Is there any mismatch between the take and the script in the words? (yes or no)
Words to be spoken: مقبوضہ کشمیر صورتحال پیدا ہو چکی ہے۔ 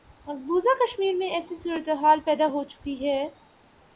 yes